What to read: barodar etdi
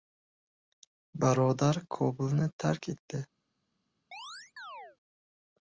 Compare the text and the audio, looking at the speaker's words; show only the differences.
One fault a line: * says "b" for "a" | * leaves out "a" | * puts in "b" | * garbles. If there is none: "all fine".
* puts in "kobulni tark"